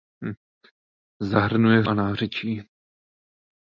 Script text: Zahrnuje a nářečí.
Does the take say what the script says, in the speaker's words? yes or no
yes